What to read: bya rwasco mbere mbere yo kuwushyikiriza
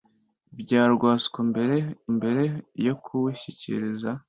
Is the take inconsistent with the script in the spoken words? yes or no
no